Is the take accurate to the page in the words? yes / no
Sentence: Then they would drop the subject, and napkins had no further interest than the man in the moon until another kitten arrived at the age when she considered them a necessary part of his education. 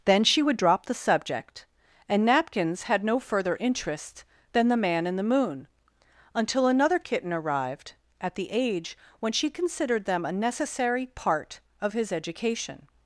no